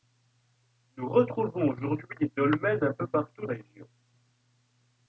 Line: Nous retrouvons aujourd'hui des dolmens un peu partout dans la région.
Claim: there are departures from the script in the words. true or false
true